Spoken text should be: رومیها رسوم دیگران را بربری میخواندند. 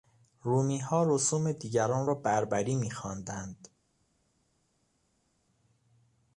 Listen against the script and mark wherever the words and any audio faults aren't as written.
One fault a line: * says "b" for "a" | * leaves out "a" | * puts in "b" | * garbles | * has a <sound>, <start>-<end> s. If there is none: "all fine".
all fine